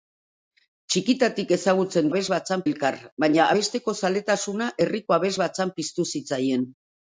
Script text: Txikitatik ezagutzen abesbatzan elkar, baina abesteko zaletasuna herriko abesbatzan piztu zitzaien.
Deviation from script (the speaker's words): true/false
false